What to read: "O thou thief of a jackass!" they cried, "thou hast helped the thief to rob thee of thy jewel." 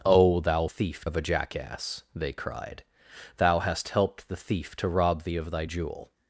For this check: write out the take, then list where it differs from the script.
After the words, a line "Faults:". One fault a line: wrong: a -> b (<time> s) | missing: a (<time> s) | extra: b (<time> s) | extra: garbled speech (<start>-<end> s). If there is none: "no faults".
"O thou thief of a jackass!" they cried, "thou hast helped the thief to rob thee of thy jewel."
Faults:
no faults